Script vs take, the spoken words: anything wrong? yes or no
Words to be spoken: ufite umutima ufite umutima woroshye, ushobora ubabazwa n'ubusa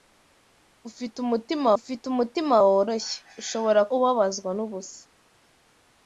no